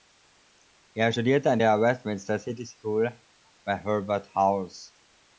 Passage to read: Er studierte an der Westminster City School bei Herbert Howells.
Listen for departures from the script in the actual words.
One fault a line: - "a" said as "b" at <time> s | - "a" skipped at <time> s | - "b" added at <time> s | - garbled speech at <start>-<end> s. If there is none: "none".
none